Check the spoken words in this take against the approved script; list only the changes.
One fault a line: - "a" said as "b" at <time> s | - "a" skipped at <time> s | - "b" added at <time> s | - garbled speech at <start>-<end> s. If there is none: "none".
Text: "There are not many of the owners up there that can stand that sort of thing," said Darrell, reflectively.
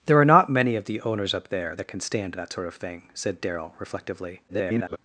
- garbled speech at 4.5-5.0 s